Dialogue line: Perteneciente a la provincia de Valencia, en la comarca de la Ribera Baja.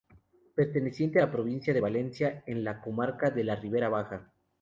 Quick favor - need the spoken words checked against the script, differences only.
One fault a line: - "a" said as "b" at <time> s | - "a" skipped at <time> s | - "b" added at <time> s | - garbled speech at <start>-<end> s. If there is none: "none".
none